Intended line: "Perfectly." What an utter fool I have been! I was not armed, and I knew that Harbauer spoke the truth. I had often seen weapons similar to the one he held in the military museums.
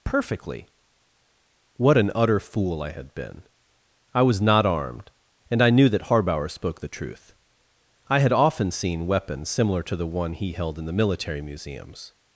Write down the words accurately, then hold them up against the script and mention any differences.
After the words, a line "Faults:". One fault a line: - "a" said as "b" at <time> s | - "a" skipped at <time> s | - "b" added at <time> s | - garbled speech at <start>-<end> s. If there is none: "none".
"Perfectly." What an utter fool I had been! I was not armed, and I knew that Harbauer spoke the truth. I had often seen weapons similar to the one he held in the military museums.
Faults:
- "have" said as "had" at 2.9 s